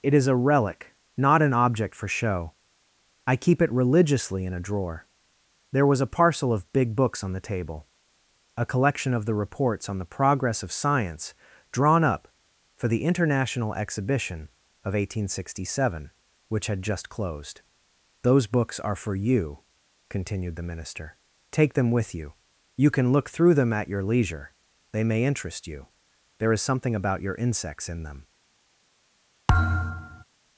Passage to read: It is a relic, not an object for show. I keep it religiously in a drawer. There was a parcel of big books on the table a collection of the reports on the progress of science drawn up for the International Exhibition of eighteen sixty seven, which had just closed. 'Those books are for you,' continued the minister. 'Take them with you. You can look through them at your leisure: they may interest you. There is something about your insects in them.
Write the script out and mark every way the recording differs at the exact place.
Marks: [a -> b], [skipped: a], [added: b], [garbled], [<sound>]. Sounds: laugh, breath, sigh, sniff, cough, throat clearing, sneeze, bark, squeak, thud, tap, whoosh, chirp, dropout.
It is a relic, not an object for show. I keep it religiously in a drawer. There was a parcel of big books on the table a collection of the reports on the progress of science drawn up for the International Exhibition of eighteen sixty seven, which had just closed. 'Those books are for you,' continued the minister. 'Take them with you. You can look through them at your leisure: they may interest you. There is something about your insects in them. [thud]